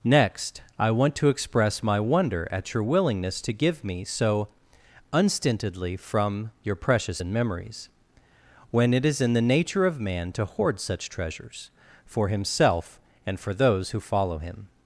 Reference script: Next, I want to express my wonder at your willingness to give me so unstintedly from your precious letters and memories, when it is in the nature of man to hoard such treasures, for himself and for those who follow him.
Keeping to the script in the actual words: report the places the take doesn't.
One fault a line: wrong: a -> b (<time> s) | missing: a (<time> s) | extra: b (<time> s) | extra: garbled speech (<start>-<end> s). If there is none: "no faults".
missing: letters (7.2 s)